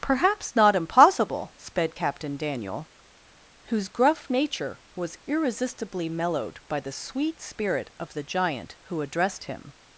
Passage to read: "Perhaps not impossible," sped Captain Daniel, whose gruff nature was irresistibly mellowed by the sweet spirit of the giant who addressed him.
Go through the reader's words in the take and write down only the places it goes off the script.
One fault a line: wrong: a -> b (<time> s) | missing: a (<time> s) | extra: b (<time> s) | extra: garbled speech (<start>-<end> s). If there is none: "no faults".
no faults